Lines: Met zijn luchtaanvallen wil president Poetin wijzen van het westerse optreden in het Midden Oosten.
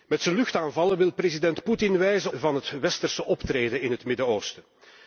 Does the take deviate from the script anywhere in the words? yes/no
no